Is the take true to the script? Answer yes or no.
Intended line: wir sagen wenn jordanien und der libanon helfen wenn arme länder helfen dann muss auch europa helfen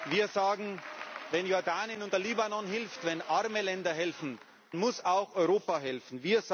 no